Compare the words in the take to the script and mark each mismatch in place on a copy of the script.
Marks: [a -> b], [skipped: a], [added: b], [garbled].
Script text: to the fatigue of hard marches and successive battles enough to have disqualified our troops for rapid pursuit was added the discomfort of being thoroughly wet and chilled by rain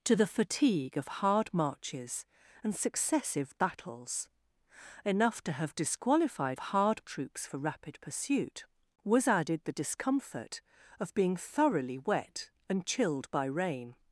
to the fatigue of hard marches and successive battles enough to have disqualified [our -> hard] troops for rapid pursuit was added the discomfort of being thoroughly wet and chilled by rain